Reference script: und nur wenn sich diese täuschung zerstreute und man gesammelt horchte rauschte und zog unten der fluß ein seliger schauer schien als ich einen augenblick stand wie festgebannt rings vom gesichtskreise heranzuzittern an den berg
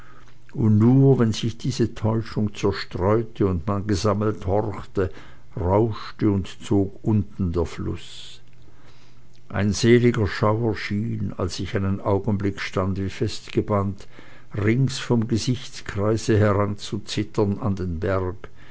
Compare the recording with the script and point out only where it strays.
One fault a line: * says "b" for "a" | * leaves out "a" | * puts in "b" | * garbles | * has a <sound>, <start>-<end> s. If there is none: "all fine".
all fine